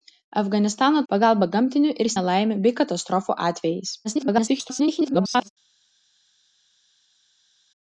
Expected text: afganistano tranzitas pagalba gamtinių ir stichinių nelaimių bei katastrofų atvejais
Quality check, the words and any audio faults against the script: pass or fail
fail